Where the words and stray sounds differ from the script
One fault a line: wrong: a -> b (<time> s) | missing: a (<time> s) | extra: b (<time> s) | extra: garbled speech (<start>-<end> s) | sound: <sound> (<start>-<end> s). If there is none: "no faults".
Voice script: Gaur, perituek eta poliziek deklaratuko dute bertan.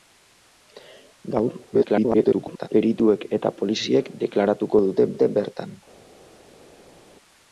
extra: garbled speech (1.7-2.7 s)
extra: dute (5.1 s)